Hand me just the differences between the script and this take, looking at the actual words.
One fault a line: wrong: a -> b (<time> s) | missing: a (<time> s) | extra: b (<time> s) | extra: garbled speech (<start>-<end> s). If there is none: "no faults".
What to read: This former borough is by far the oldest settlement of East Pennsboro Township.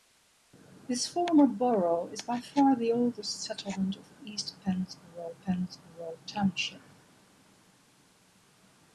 extra: Pennsboro (5.5 s)